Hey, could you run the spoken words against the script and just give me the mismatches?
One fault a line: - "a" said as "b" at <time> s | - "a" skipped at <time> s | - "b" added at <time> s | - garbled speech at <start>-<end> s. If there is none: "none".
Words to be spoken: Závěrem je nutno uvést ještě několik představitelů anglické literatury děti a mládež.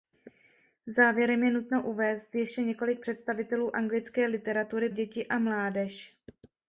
none